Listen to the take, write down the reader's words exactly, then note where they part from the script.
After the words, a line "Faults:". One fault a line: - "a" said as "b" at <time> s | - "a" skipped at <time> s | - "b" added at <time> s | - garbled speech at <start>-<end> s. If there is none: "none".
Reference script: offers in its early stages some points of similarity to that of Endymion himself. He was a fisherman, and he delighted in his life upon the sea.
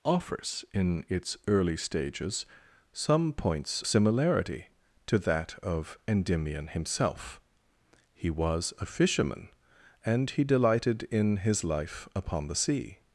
offers in its early stages some points similarity to that of Endymion himself. He was a fisherman, and he delighted in his life upon the sea.
Faults:
- "of" skipped at 3.8 s